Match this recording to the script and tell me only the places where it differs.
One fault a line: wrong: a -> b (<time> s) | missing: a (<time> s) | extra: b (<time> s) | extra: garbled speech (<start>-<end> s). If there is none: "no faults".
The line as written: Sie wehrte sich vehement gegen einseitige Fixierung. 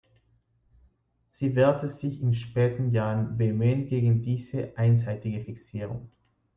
extra: in späten Jahren (2.2 s)
extra: diese (4.2 s)